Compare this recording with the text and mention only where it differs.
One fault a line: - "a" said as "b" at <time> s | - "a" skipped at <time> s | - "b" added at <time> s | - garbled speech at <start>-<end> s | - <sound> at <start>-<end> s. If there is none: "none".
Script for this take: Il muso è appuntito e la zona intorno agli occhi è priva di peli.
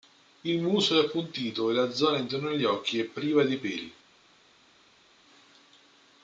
none